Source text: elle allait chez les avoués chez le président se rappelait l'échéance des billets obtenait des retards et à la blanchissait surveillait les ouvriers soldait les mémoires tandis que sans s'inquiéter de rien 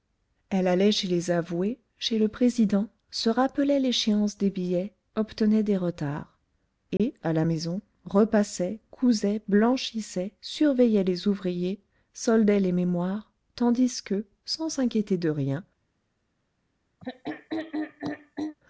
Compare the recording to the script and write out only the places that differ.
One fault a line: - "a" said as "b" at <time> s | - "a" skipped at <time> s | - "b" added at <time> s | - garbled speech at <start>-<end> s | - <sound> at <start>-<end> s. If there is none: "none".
- dropout at 7.0-7.0 s
- "maison repassait cousait" added at 7.4 s
- throat clearing at 17.0-18.6 s